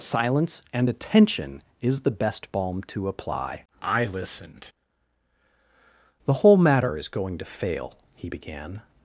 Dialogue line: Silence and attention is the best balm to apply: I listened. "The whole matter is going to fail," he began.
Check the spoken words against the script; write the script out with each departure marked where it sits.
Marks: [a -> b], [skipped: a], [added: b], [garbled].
Silence and attention is the best balm to apply: I listened. "The whole matter is going to fail," he began.